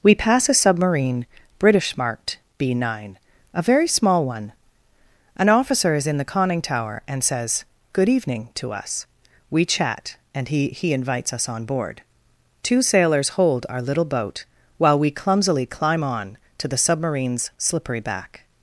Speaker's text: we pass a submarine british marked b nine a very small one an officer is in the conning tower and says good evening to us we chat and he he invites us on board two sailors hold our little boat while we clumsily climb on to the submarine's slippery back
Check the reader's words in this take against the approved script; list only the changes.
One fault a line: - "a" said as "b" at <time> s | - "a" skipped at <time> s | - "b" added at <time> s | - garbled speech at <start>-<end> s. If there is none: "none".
none